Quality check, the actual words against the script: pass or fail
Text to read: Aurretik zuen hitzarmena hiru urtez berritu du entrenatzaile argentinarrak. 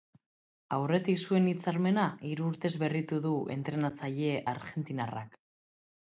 pass